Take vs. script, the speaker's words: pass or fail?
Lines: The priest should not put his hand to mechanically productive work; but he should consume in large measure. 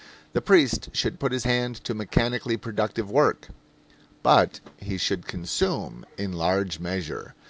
fail